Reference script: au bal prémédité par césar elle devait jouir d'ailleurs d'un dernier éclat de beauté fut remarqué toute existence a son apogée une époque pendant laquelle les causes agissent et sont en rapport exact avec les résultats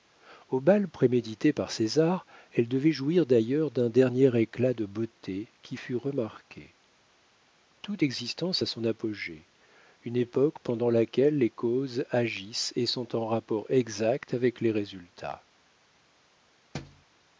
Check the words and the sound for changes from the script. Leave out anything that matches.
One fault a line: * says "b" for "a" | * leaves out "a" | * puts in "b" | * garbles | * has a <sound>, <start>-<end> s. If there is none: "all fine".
* puts in "qui"
* has a thud, 16.7-17.1 s